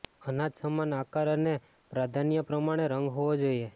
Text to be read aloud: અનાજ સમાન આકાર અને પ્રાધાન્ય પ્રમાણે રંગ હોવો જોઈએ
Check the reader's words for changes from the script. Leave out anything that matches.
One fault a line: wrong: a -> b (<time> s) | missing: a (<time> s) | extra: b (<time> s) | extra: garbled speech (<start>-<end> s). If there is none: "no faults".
no faults